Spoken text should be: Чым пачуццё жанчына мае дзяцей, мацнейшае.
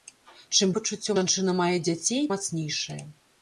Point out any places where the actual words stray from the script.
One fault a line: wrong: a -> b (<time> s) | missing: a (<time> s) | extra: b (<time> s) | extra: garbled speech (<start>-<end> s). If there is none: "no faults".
no faults